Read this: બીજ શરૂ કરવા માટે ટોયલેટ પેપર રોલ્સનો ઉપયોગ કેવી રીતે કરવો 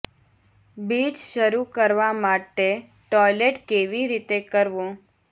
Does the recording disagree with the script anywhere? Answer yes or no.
yes